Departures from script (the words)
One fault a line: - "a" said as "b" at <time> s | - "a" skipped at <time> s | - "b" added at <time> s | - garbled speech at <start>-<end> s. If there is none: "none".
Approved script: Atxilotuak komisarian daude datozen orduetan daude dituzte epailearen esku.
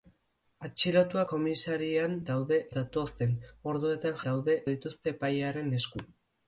none